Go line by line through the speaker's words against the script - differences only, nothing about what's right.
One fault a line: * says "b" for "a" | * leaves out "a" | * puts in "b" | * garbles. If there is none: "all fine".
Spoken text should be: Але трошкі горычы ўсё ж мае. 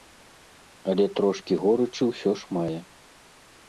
all fine